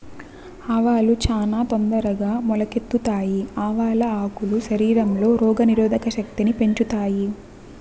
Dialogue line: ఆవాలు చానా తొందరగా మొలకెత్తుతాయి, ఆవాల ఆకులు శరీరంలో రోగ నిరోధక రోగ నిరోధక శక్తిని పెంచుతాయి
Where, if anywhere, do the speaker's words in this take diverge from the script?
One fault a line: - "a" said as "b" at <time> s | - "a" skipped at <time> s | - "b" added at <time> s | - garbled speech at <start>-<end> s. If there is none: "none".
- "రోగ నిరోధక" skipped at 6.1 s